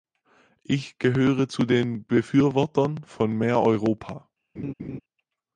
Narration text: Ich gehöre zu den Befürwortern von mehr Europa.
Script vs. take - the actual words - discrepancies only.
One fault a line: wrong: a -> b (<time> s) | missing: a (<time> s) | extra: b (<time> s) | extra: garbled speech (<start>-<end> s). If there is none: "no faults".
no faults